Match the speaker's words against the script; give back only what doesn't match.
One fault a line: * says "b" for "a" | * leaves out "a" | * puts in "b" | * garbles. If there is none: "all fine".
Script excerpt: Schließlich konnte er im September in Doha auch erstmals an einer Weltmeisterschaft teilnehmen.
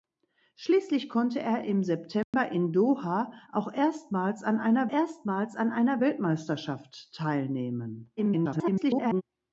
* puts in "erstmals an einer"
* garbles